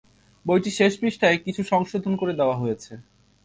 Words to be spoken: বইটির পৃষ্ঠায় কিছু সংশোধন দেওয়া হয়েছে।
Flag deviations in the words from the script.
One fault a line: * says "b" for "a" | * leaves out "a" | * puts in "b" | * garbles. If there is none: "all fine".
* puts in "শেষ"
* puts in "করে"